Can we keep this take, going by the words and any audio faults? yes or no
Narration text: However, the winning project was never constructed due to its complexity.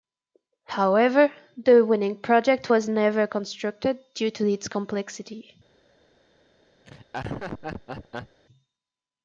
no